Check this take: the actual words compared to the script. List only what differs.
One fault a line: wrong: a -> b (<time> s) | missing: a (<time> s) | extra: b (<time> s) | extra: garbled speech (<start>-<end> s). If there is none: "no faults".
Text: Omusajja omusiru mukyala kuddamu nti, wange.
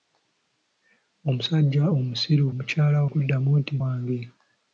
no faults